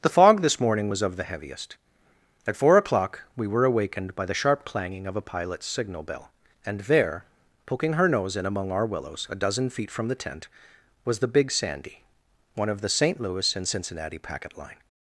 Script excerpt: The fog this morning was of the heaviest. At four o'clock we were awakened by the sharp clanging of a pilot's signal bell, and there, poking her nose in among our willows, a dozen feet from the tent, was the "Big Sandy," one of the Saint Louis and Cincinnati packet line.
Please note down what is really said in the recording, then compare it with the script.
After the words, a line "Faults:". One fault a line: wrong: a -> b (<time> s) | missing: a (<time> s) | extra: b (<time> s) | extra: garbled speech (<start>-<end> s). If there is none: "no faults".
The fog this morning was of the heaviest. At four o'clock we were awakened by the sharp clanging of a pilot's signal bell, and there, poking her nose in among our willows, a dozen feet from the tent, was the "Big Sandy," one of the Saint Louis and Cincinnati packet line.
Faults:
no faults